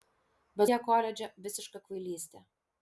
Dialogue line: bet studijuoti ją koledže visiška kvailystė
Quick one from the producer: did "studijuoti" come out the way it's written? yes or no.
no